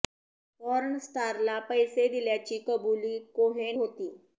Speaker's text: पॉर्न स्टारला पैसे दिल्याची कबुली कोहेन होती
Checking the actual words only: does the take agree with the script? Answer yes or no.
yes